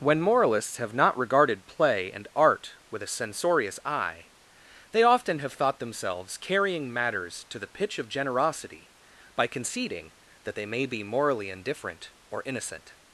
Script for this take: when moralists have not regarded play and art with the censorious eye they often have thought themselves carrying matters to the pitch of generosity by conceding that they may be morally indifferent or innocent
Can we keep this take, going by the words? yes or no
no